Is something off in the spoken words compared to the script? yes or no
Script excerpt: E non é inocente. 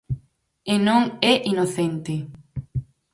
no